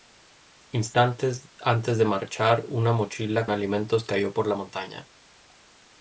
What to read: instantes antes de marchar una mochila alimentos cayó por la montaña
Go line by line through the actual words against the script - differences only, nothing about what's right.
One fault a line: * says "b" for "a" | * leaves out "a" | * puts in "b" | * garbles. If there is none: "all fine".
all fine